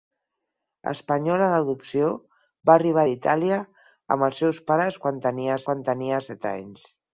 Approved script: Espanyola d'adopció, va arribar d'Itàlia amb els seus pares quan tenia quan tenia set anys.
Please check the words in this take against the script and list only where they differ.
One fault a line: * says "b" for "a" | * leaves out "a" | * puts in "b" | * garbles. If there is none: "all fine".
all fine